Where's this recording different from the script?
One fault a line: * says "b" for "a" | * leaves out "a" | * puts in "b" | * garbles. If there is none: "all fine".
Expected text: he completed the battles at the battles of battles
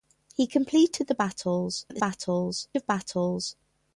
all fine